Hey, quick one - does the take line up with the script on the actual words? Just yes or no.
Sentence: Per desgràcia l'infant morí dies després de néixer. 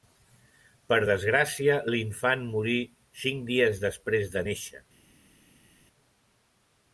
no